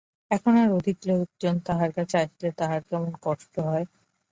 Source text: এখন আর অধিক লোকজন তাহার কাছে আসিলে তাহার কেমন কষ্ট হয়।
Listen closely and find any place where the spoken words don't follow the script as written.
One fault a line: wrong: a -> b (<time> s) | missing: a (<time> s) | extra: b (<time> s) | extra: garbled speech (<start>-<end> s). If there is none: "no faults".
no faults